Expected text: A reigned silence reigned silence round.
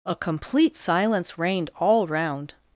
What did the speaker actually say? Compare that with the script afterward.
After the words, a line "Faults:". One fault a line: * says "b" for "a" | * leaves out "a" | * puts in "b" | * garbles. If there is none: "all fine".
A complete silence reigned all round.
Faults:
* says "complete" for "reigned"
* says "all" for "silence"